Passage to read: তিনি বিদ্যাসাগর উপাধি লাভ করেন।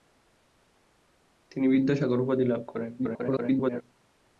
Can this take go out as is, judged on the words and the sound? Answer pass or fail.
fail